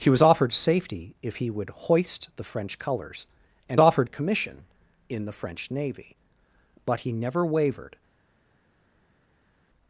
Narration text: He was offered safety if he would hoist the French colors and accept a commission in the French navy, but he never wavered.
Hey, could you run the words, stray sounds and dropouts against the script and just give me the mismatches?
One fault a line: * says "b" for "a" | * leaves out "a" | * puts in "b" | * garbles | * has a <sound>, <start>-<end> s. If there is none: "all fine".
* says "offered" for "accept"